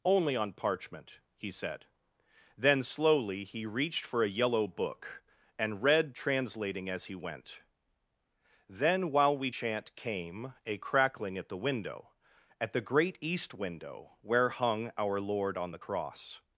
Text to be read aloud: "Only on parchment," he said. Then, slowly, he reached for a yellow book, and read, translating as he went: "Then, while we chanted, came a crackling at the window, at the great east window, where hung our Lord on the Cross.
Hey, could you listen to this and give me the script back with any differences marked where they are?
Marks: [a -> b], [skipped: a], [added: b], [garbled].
"Only on parchment," he said. Then, slowly, he reached for a yellow book, and read, translating as he went: "Then, while we [chanted, -> chant] came a crackling at the window, at the great east window, where hung our Lord on the Cross.